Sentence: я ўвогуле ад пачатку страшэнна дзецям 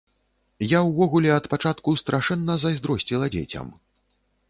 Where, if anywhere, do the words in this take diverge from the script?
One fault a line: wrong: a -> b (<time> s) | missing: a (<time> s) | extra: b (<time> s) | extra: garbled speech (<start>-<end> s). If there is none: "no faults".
extra: зайздросціла (2.7 s)